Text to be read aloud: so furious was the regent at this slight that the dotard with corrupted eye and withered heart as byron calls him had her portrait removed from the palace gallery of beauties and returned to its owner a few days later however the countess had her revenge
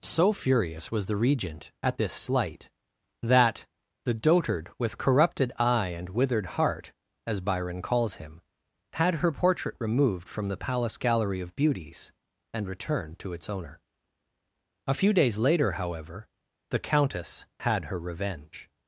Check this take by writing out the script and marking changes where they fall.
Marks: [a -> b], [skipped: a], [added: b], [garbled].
so furious was the regent at this slight that the dotard with corrupted eye and withered heart as byron calls him had her portrait removed from the palace gallery of beauties and returned to its owner a few days later however the countess had her revenge